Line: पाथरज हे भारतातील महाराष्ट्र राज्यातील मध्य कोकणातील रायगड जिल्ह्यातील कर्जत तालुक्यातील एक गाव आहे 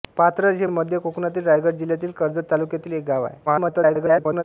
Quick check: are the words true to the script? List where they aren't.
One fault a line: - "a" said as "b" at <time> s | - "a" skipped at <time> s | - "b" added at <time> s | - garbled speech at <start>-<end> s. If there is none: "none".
- "भारतातील महाराष्ट्र राज्यातील" skipped at 0.7 s
- garbled speech at 3.5-4.4 s